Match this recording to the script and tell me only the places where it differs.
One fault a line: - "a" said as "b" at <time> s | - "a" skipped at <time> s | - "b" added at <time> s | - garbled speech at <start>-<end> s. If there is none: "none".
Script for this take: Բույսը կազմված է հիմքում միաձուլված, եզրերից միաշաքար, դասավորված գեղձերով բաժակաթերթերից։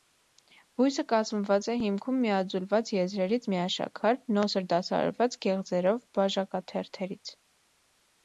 - "նոսր" added at 4.4 s